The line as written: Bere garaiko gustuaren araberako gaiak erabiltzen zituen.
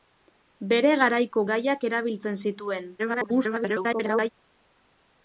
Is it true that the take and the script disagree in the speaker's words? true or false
true